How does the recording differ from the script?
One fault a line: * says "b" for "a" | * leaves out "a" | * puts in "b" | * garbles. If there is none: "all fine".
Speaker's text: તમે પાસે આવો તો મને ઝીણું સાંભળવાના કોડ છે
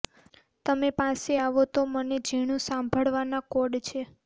all fine